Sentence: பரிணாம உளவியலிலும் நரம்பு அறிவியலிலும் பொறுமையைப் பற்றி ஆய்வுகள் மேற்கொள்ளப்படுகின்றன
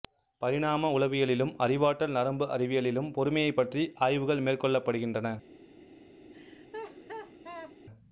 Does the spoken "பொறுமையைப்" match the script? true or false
true